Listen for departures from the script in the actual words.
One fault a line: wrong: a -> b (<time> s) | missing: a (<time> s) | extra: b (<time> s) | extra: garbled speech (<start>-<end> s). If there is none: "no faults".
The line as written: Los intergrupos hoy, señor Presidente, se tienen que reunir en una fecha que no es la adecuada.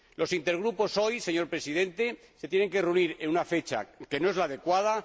no faults